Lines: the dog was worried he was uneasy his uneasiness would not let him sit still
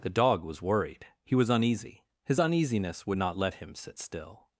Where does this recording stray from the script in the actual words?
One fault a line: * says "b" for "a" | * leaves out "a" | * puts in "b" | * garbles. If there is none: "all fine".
all fine